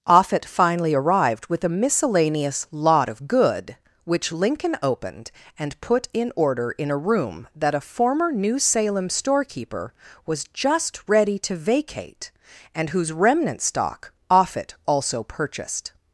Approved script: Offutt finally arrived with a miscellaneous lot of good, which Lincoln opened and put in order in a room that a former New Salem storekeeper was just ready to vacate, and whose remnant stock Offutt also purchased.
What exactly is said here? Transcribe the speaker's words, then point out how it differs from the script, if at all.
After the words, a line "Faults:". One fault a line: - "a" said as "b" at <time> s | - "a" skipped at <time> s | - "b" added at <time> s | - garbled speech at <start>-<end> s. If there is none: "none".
Offutt finally arrived with a miscellaneous lot of good, which Lincoln opened and put in order in a room that a former New Salem storekeeper was just ready to vacate, and whose remnant stock Offutt also purchased.
Faults:
none